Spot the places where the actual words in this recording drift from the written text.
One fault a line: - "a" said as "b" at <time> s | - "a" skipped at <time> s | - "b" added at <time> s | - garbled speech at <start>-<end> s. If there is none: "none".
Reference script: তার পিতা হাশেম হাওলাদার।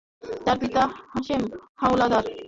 none